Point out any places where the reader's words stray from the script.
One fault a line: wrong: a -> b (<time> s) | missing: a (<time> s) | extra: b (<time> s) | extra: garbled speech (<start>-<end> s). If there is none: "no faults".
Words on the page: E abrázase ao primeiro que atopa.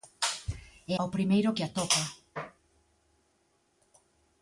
missing: abrázase (0.9 s)